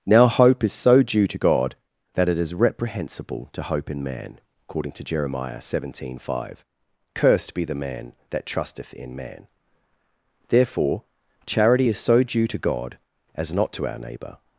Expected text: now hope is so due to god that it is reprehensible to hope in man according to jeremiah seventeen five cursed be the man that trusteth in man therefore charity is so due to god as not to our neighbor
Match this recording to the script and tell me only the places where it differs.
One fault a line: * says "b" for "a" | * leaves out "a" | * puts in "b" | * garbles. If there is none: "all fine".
all fine